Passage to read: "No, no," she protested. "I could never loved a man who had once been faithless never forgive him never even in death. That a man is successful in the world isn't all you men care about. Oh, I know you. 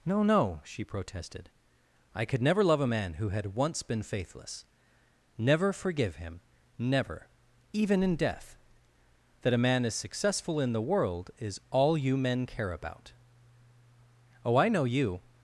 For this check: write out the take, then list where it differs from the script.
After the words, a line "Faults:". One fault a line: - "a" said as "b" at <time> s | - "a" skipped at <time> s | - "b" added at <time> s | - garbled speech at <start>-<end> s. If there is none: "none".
"No, no," she protested. "I could never love a man who had once been faithless never forgive him never even in death. That a man is successful in the world is all you men care about. Oh, I know you.
Faults:
- "loved" said as "love" at 2.6 s
- "isn't" said as "is" at 11.4 s